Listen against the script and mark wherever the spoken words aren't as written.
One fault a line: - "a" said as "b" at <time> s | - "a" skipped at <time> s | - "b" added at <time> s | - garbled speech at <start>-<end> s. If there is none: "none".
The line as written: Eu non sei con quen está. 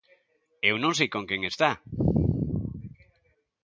none